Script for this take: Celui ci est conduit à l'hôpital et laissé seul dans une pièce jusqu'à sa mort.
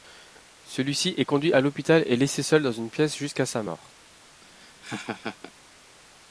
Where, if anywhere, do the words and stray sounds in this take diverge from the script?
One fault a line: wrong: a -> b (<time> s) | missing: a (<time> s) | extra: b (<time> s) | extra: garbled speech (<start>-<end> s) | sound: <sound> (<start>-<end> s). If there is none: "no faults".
sound: laugh (4.4-5.5 s)